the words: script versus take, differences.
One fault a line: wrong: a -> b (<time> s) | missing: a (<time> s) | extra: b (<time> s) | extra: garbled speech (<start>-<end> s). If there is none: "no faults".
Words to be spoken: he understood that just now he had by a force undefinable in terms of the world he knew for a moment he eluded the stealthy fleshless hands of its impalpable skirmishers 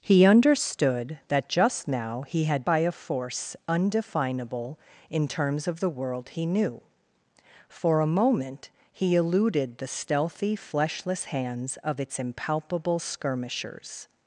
no faults